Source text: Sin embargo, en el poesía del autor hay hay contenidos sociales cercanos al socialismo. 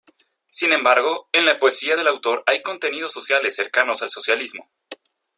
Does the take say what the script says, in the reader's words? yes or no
no